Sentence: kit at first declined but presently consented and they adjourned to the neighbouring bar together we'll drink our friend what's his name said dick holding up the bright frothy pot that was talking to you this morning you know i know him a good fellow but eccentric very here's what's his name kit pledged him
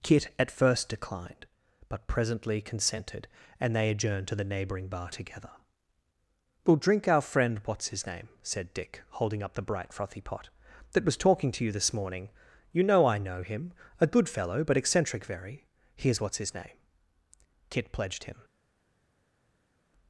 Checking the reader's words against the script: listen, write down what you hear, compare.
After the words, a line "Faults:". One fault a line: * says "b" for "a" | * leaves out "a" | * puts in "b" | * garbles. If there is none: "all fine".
kit at first declined but presently consented and they adjourned to the neighbouring bar together we'll drink our friend what's his name said dick holding up the bright frothy pot that was talking to you this morning you know i know him a good fellow but eccentric very here's what's his name kit pledged him
Faults:
all fine